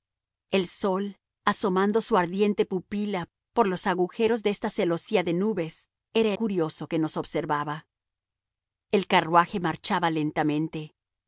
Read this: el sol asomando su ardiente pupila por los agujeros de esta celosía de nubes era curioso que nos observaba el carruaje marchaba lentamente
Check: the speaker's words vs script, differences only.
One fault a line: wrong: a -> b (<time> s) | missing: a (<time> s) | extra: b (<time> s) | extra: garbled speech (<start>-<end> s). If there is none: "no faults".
no faults